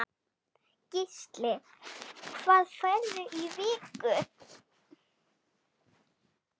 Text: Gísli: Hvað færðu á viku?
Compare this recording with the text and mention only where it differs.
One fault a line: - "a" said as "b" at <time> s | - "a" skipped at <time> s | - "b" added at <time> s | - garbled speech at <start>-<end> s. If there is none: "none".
none